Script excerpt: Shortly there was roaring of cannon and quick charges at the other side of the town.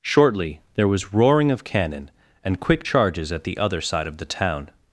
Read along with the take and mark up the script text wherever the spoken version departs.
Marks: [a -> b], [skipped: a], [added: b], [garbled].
Shortly there was roaring of cannon and quick charges at the other side of the town.